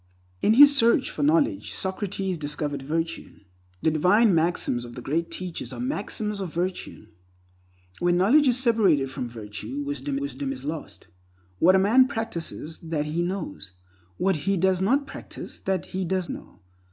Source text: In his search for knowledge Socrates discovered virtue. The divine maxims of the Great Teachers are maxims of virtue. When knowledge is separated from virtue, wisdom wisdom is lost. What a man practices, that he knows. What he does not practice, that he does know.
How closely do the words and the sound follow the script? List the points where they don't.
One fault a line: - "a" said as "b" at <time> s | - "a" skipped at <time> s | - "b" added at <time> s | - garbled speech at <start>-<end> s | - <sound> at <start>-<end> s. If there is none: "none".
none